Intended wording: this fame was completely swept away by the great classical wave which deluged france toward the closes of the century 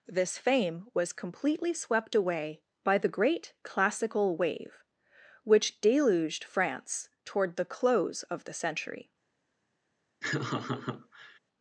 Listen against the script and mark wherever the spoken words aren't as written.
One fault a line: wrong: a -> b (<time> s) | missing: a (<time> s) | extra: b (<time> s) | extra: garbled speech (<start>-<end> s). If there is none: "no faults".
wrong: closes -> close (7.6 s)